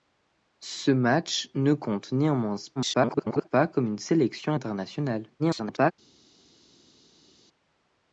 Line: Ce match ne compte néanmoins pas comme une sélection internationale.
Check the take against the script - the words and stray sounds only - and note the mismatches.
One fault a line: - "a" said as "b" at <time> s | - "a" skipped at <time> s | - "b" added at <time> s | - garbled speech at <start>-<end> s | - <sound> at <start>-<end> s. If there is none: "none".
- garbled speech at 2.8-3.5 s
- garbled speech at 5.4-5.9 s